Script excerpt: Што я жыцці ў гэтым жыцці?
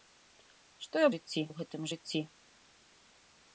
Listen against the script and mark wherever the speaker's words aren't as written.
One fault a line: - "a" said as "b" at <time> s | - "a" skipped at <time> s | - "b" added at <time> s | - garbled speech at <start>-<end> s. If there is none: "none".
none